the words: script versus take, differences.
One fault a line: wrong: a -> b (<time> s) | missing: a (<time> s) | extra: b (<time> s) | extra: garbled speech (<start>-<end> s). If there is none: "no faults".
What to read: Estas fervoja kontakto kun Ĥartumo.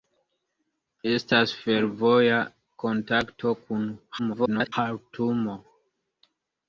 extra: garbled speech (4.2-4.7 s)